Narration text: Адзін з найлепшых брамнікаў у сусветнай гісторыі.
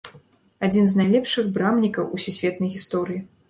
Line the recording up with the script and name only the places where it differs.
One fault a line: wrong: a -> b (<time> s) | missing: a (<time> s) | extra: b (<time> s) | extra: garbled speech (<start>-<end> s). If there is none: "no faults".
no faults